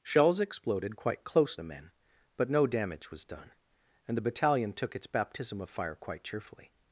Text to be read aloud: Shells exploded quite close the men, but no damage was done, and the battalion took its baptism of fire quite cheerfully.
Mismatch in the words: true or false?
false